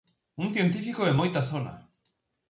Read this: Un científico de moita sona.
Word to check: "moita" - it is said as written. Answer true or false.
true